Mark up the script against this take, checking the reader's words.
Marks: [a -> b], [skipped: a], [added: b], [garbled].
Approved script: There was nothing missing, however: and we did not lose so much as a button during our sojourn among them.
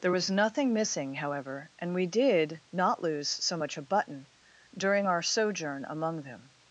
There was nothing missing, however: and we did not lose so much [skipped: as] a button during our sojourn among them.